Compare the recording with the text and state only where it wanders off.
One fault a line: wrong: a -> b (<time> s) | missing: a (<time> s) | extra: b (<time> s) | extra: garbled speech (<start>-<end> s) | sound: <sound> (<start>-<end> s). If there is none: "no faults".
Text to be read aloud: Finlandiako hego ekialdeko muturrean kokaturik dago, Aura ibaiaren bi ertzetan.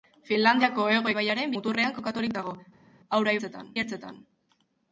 wrong: ekialdeko -> ibaiaren (1.1 s)
wrong: ibaiaren -> ertzetan (3.4 s)